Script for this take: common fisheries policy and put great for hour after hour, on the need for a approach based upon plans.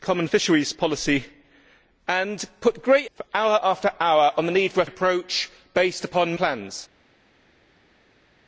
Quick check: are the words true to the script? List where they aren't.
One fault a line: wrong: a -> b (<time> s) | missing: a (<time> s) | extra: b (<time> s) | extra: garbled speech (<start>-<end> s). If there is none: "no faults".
no faults